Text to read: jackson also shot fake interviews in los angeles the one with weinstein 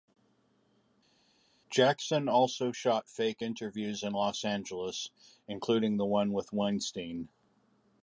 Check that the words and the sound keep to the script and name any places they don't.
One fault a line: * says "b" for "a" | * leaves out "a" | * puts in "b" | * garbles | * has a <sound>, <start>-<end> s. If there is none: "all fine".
* puts in "including"